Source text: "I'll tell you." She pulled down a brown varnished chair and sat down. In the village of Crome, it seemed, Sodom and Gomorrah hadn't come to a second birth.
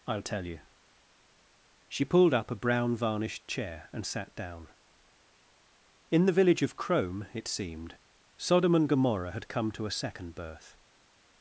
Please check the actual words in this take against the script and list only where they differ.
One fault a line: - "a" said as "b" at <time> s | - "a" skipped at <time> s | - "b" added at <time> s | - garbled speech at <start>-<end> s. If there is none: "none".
- "down" said as "up" at 2.3 s
- "hadn't" said as "had" at 9.3 s